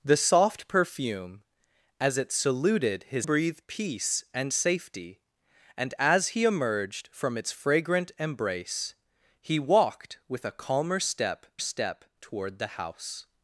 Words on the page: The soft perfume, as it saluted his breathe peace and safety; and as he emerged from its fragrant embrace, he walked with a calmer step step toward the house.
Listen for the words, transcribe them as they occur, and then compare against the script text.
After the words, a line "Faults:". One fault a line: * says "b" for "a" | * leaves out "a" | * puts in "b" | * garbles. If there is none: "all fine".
The soft perfume, as it saluted his breathe peace and safety; and as he emerged from its fragrant embrace, he walked with a calmer step step toward the house.
Faults:
all fine